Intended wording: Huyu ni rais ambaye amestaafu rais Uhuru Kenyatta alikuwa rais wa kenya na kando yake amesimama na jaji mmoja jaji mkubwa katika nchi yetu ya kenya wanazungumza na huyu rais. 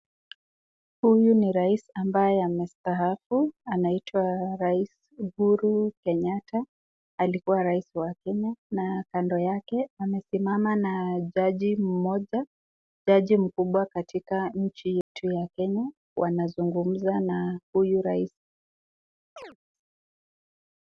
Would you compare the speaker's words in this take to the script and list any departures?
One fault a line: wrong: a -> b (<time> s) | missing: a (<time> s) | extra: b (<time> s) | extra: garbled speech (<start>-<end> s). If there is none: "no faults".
extra: anaitwa (3.7 s)